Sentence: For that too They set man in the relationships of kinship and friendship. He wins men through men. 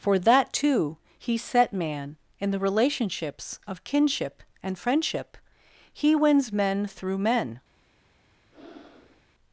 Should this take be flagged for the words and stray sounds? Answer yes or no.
yes